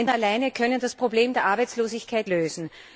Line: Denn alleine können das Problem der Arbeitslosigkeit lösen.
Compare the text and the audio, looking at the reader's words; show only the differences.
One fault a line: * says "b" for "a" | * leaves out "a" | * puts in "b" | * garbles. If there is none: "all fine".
all fine